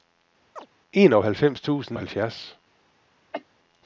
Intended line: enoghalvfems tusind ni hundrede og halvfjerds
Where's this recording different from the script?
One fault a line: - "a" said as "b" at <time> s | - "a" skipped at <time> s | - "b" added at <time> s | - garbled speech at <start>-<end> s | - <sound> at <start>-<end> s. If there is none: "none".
- chirp at 0.6-0.7 s
- "ni hundrede" skipped at 2.0 s
- cough at 3.3-3.4 s